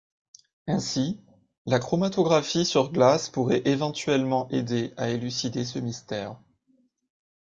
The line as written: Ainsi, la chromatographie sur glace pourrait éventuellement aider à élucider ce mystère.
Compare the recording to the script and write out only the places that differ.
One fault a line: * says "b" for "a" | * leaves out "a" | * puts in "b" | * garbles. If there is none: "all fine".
all fine